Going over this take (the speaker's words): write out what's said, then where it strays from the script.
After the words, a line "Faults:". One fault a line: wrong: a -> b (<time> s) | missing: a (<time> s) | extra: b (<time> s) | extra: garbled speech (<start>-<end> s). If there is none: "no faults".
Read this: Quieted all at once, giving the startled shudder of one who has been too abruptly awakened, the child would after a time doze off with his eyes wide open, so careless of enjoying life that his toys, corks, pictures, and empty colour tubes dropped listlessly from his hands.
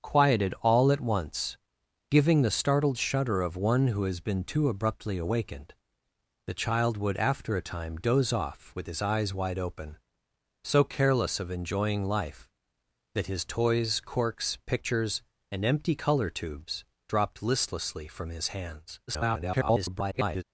Quieted all at once, giving the startled shudder of one who has been too abruptly awakened, the child would after a time doze off with his eyes wide open, so careless of enjoying life that his toys, corks, pictures, and empty colour tubes dropped listlessly from his hands. [garbled]
Faults:
extra: garbled speech (19.1-20.4 s)